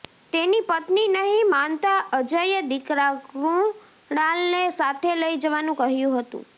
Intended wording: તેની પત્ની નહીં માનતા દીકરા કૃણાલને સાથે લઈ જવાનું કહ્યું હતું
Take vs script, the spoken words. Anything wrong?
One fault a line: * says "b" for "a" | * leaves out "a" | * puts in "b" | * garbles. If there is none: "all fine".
* puts in "અજયે"